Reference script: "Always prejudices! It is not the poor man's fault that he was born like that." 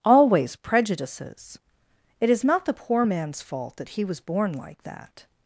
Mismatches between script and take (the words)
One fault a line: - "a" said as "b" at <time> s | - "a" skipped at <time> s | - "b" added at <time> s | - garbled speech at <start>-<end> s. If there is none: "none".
none